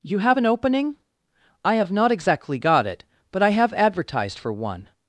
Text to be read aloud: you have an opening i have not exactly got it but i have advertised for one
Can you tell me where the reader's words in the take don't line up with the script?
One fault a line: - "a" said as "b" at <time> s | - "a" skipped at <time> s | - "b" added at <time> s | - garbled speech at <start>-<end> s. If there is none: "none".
none